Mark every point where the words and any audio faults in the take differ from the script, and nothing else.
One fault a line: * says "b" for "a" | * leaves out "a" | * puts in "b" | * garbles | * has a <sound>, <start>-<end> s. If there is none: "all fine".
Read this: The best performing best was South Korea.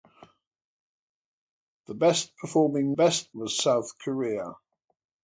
all fine